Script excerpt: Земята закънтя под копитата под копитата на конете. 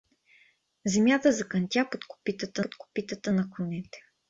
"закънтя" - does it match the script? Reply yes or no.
yes